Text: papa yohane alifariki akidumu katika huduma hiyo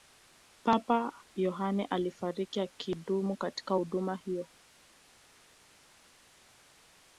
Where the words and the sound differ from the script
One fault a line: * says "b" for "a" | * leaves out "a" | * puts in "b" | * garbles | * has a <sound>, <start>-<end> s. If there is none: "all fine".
all fine